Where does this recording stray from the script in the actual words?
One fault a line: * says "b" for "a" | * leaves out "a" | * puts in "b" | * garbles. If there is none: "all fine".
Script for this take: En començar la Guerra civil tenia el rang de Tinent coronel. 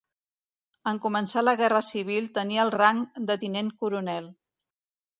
all fine